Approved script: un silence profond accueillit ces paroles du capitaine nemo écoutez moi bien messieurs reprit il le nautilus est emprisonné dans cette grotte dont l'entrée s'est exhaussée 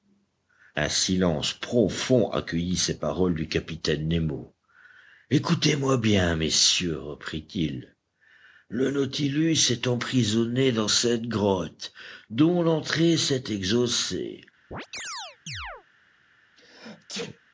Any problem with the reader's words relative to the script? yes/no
no